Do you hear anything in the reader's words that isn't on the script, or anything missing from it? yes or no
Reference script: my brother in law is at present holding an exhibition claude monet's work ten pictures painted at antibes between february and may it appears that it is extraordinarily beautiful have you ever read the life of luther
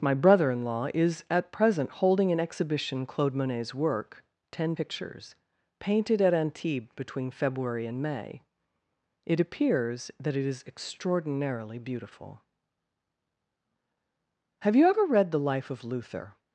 no